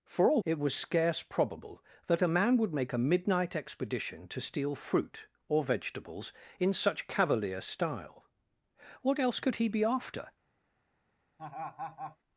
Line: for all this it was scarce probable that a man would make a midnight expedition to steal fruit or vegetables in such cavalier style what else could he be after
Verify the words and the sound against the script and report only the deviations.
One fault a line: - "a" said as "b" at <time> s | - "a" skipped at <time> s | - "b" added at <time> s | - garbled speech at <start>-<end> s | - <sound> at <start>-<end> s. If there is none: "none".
- "this" skipped at 0.4 s
- laugh at 11.4-12.2 s